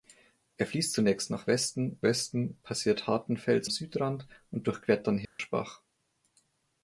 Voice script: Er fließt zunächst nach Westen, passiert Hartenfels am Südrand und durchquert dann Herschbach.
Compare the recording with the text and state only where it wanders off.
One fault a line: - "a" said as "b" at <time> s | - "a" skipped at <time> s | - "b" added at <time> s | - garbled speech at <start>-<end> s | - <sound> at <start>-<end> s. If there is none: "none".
- "Westen" added at 2.0 s
- "am" skipped at 3.7 s
- dropout at 5.3-5.4 s